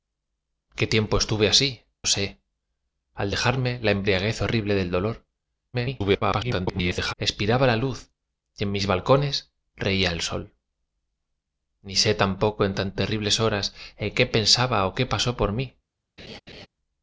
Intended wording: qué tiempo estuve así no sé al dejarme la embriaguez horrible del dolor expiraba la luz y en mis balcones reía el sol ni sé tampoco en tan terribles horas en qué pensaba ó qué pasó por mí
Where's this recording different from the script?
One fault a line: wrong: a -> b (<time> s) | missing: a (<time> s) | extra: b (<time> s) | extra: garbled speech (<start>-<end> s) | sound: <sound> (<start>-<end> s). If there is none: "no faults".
missing: no (1.8 s)
extra: garbled speech (5.7-7.1 s)
sound: laugh (16.2-16.7 s)